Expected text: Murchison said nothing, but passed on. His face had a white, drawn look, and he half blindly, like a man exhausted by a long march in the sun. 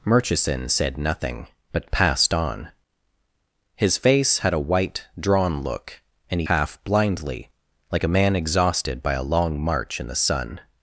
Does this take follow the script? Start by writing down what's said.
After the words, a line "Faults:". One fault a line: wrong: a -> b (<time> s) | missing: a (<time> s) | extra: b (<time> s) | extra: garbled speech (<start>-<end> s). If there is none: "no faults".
Murchison said nothing, but passed on. His face had a white, drawn look, and he half blindly, like a man exhausted by a long march in the sun.
Faults:
no faults